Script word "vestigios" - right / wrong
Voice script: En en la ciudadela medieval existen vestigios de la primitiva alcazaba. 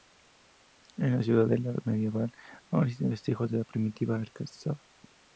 right